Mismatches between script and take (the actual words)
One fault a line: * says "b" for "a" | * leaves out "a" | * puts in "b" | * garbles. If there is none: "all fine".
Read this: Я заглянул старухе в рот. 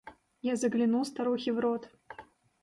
all fine